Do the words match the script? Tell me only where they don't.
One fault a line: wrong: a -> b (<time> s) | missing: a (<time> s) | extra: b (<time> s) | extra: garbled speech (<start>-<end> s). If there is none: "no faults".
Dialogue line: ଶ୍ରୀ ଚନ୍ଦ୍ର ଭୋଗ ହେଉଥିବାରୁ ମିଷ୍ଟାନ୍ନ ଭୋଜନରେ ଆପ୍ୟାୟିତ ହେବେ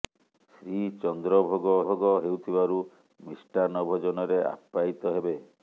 extra: ଭୋଗ (1.8 s)